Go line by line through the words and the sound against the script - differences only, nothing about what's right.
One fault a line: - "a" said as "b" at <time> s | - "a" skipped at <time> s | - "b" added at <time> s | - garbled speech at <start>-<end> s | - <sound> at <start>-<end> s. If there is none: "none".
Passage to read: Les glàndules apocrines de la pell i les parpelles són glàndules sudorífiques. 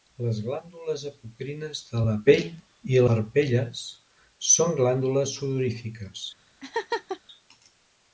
- "les" skipped at 3.0 s
- laugh at 6.6-7.2 s